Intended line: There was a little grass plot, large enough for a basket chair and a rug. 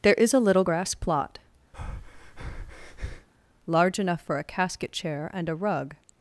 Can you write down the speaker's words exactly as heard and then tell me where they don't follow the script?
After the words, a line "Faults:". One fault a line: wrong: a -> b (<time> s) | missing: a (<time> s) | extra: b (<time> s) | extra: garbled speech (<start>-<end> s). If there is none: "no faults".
There is a little grass plot, large enough for a casket chair and a rug.
Faults:
wrong: was -> is (0.1 s)
wrong: basket -> casket (4.4 s)